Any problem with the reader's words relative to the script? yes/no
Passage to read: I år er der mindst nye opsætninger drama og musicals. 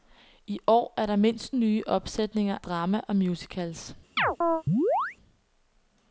no